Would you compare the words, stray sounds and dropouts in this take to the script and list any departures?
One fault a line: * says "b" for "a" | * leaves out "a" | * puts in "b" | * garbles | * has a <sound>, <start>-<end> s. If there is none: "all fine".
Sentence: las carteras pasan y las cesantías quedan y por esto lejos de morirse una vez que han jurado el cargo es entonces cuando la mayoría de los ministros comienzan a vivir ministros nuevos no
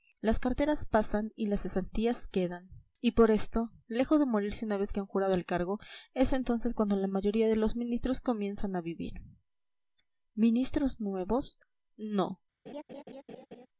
* has a laugh, 12.7-13.7 s